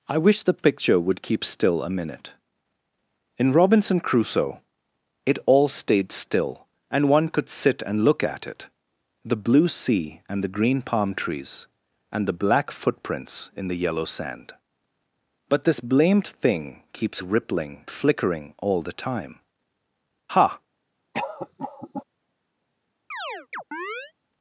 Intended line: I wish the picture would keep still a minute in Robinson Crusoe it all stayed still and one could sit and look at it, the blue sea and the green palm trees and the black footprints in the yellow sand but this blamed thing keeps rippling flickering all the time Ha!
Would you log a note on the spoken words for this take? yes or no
no